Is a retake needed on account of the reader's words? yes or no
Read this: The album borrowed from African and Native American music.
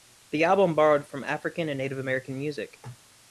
no